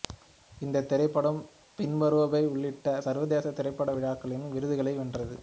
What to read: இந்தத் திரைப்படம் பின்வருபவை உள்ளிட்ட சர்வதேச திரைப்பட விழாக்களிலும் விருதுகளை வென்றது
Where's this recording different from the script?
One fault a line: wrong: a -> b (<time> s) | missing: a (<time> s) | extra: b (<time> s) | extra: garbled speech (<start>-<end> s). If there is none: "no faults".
no faults